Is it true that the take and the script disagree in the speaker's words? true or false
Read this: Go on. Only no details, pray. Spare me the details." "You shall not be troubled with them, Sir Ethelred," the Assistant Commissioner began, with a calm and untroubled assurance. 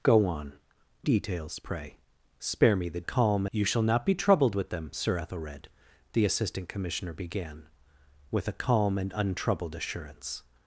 true